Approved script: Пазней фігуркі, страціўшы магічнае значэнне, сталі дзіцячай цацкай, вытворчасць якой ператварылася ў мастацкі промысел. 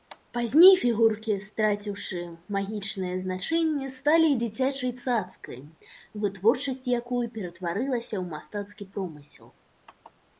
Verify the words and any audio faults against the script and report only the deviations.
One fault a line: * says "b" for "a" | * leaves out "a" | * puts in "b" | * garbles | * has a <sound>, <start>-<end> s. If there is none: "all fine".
all fine